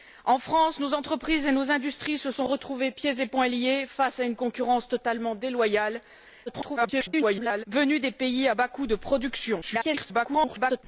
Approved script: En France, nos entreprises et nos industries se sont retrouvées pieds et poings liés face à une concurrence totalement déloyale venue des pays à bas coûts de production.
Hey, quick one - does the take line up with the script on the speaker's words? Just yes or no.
no